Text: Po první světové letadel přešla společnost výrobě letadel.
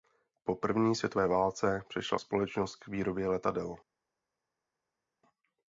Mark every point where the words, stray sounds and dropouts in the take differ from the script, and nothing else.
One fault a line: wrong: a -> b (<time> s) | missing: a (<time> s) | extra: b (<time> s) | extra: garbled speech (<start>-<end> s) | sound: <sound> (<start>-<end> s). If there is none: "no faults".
wrong: letadel -> válce (1.3 s)
extra: k (2.7 s)